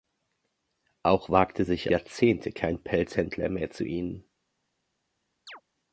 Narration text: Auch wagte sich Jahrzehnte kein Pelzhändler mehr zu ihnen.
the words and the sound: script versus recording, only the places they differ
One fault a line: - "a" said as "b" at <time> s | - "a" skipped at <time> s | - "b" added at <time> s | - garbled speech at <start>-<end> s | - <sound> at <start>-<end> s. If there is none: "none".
- chirp at 5.5-5.6 s